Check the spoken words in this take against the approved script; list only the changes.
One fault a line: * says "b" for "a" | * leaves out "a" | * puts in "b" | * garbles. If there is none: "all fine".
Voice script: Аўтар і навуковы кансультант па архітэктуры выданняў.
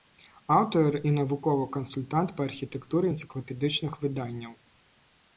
* puts in "энцыклапедычных"